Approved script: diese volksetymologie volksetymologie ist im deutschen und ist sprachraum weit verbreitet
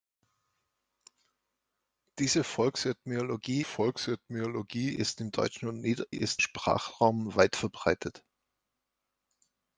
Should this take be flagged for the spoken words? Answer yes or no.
no